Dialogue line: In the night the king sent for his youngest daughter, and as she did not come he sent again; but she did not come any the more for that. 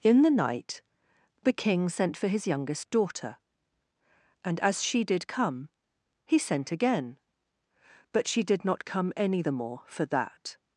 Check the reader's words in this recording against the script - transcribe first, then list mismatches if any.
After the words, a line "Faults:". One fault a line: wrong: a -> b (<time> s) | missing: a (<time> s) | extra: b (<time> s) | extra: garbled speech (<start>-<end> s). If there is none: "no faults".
In the night the king sent for his youngest daughter, and as she did come he sent again; but she did not come any the more for that.
Faults:
missing: not (5.3 s)